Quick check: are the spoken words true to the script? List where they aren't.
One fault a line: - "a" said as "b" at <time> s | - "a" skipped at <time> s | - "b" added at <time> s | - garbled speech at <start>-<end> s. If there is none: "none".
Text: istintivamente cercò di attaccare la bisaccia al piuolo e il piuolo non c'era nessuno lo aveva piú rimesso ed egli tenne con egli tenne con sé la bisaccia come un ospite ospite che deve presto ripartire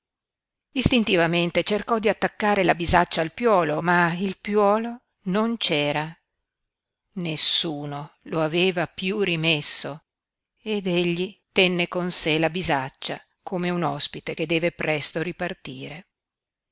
- "e" said as "ma" at 3.8 s
- "egli tenne con" skipped at 12.1 s
- "ospite" skipped at 14.4 s